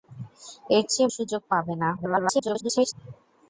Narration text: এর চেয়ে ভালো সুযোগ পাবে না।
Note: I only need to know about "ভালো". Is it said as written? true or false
false